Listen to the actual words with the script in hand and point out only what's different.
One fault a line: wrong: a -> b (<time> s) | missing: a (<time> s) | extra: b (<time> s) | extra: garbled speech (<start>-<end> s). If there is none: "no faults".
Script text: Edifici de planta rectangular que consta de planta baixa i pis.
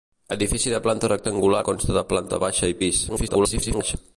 missing: que (1.6 s)
extra: garbled speech (3.1-4.0 s)